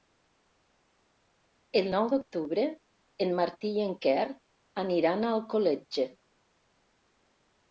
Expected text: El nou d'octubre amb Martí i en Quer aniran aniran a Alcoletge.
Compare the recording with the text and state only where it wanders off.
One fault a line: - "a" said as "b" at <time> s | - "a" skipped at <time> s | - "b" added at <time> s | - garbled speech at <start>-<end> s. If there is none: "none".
- "amb" said as "en" at 3.3 s
- "aniran" skipped at 5.3 s